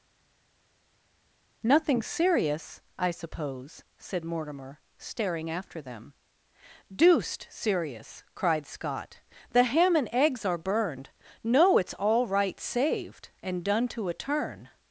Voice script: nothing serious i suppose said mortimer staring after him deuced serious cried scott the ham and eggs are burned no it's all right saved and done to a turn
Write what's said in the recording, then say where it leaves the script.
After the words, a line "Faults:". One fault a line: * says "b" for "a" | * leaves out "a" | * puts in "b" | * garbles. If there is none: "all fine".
nothing serious i suppose said mortimer staring after them deuced serious cried scott the ham and eggs are burned no it's all right saved and done to a turn
Faults:
* says "them" for "him"